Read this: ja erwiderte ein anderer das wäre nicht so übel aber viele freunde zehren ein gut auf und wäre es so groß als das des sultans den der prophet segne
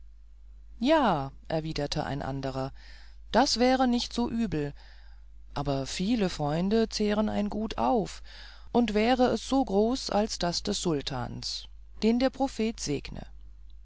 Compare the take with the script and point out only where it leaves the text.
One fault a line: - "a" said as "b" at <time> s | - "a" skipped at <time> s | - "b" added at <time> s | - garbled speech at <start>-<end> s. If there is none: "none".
none